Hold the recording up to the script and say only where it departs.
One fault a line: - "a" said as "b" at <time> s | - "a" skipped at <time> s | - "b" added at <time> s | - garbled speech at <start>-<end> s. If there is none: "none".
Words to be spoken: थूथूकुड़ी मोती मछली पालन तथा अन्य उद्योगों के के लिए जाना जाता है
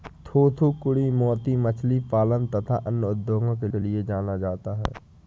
none